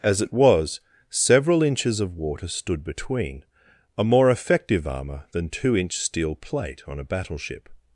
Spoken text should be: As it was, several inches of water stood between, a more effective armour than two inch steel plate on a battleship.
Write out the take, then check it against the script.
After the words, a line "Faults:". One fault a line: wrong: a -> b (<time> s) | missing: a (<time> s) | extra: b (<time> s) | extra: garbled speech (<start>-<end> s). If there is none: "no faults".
As it was, several inches of water stood between, a more effective armour than two inch steel plate on a battleship.
Faults:
no faults